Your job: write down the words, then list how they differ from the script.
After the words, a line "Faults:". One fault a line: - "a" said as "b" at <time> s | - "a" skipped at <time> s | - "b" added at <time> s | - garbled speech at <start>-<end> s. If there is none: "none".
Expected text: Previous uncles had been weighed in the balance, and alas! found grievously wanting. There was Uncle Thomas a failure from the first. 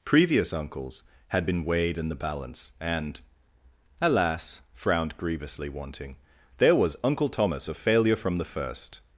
Previous uncles had been weighed in the balance, and alas! frowned grievously wanting. There was Uncle Thomas a failure from the first.
Faults:
- "found" said as "frowned" at 4.7 s